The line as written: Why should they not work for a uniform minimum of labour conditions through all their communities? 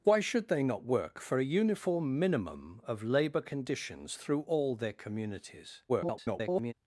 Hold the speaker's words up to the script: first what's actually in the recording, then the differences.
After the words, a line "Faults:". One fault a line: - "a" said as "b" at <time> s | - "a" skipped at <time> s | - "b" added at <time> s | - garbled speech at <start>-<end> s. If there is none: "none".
Why should they not work for a uniform minimum of labour conditions through all their communities? [garbled]
Faults:
- garbled speech at 5.9-6.7 s